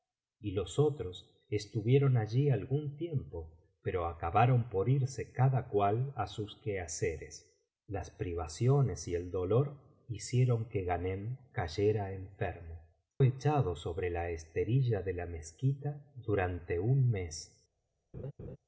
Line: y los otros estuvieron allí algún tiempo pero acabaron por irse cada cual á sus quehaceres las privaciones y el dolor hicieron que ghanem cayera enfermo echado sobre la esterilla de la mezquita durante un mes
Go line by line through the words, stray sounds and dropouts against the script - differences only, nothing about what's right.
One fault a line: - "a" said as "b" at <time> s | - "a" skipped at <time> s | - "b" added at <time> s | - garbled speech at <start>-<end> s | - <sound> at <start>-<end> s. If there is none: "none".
- laugh at 18.1-18.6 s